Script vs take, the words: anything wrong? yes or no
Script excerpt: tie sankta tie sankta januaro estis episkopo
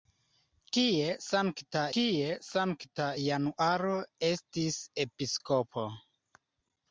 no